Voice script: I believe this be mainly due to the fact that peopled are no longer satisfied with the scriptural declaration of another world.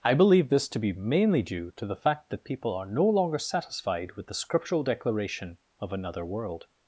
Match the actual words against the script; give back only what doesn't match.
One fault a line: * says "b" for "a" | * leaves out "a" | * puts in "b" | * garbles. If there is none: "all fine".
* puts in "to"
* says "people" for "peopled"